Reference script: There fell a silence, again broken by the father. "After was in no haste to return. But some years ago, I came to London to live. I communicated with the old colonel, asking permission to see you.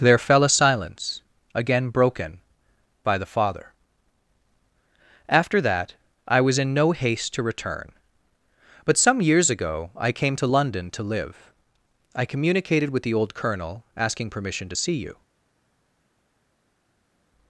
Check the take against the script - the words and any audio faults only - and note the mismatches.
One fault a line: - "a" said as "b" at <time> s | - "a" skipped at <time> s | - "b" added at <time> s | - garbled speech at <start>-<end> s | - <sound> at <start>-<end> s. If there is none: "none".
- "that I" added at 5.6 s